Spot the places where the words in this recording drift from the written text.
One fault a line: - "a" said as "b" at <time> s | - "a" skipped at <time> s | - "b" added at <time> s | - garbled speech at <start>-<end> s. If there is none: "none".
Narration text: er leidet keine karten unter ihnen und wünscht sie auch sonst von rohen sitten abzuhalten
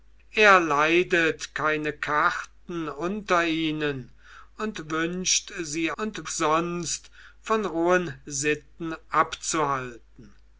- "auch" said as "und" at 6.0 s